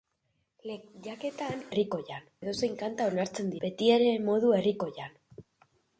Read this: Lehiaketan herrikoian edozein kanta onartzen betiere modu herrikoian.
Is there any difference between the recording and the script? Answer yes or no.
no